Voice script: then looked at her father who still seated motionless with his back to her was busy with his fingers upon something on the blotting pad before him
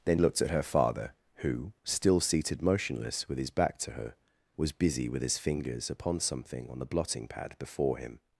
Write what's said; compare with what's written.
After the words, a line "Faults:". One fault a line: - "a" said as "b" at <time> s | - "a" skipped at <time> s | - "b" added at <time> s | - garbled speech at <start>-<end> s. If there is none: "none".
then looked at her father who still seated motionless with his back to her was busy with his fingers upon something on the blotting pad before him
Faults:
none